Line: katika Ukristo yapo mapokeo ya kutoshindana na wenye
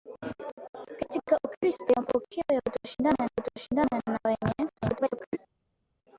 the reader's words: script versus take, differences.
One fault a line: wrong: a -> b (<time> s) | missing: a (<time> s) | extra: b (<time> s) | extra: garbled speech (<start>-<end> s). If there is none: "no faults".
missing: yapo (1.9 s)
extra: kutoshindana (3.3 s)
extra: garbled speech (4.8-5.4 s)